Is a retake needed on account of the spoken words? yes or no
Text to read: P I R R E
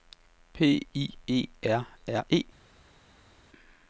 yes